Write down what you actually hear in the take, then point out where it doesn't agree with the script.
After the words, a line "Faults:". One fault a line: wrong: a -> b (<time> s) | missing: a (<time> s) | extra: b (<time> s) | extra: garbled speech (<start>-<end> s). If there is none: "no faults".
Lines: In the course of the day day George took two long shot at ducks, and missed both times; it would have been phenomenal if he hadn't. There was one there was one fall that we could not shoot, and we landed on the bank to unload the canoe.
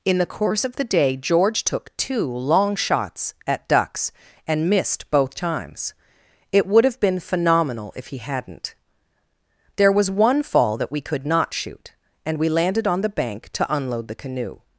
In the course of the day George took two long shots at ducks, and missed both times; it would have been phenomenal if he hadn't. There was one fall that we could not shoot, and we landed on the bank to unload the canoe.
Faults:
missing: day (1.2 s)
wrong: shot -> shots (2.7 s)
missing: there was one (10.4 s)